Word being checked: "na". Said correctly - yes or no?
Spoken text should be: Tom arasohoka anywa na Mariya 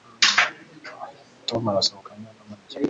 yes